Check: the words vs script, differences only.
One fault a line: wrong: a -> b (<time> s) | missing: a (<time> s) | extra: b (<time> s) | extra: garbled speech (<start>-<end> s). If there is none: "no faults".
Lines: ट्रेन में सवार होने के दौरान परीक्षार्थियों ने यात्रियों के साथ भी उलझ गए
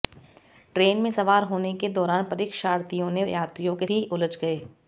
missing: साथ (3.9 s)